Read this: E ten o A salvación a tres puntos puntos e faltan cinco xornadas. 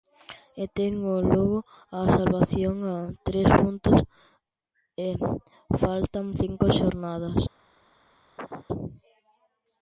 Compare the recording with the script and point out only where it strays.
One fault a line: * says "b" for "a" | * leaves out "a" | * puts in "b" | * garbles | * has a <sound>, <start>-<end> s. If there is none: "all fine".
* puts in "Lugo"
* leaves out "puntos"
* has a chirp, 8.4-8.7 s